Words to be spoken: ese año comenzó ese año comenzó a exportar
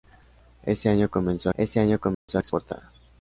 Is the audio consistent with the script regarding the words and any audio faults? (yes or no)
no